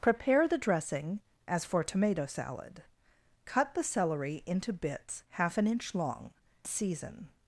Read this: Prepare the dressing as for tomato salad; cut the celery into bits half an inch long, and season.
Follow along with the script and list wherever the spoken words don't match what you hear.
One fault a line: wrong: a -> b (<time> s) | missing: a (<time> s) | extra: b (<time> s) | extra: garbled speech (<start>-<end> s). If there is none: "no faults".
missing: and (6.3 s)